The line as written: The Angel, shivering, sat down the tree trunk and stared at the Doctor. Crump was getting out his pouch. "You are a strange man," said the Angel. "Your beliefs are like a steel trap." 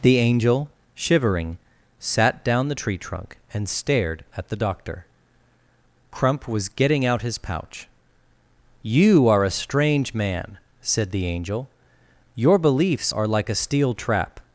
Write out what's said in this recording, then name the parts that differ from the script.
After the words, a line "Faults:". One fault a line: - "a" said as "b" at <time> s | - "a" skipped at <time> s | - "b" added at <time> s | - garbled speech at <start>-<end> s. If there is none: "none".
The Angel, shivering, sat down the tree trunk and stared at the Doctor. Crump was getting out his pouch. "You are a strange man," said the Angel. "Your beliefs are like a steel trap."
Faults:
none